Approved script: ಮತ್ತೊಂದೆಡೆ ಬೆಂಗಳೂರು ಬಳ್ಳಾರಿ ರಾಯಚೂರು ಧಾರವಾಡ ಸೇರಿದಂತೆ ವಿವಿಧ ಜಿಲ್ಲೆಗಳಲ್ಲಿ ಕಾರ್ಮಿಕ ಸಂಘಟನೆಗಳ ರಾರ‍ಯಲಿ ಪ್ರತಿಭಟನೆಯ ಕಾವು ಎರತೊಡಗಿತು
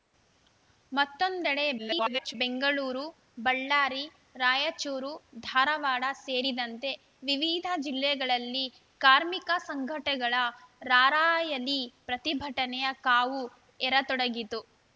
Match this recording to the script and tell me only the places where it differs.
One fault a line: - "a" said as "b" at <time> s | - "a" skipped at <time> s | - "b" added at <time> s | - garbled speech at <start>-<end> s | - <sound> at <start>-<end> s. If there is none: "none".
- garbled speech at 1.8-2.3 s